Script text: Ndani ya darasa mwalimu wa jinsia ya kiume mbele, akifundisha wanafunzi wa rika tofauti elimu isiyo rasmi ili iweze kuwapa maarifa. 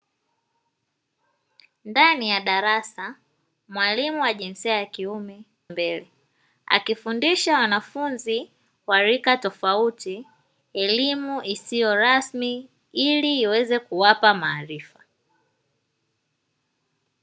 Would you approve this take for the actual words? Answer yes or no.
yes